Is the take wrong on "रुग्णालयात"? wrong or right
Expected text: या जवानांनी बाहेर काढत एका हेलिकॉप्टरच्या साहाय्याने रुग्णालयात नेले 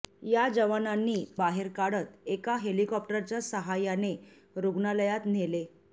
right